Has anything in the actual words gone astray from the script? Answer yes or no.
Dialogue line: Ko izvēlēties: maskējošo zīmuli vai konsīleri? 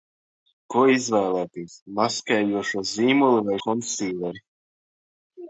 no